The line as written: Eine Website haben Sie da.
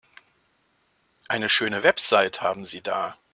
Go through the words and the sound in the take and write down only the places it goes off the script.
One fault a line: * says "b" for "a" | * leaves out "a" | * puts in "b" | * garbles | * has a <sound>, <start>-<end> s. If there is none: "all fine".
* puts in "schöne"